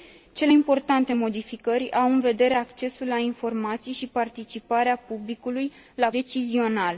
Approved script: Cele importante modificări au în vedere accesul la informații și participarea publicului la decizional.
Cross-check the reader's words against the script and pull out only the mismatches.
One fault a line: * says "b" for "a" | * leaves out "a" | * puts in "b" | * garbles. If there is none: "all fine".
all fine